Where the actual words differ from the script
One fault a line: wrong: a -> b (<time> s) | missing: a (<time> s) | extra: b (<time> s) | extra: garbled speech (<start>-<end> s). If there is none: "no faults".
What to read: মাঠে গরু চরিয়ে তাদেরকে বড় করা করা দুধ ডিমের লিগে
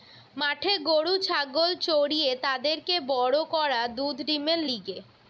extra: ছাগল (1.2 s)
missing: করা (3.8 s)